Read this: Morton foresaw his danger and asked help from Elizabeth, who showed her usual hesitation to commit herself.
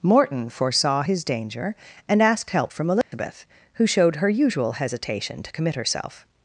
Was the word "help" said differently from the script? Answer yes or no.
no